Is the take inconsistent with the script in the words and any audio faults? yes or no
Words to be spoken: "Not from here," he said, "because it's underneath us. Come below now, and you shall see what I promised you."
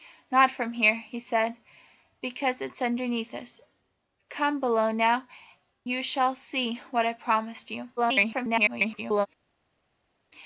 yes